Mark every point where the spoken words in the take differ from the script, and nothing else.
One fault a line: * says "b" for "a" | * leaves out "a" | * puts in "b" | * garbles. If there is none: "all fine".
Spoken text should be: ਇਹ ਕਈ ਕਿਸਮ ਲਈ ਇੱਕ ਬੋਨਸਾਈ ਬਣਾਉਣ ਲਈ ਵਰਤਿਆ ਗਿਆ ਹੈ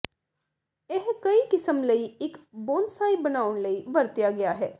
all fine